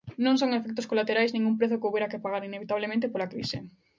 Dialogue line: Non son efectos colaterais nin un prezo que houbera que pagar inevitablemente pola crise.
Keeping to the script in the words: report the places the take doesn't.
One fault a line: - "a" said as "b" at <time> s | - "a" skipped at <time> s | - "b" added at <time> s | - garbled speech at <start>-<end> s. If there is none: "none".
none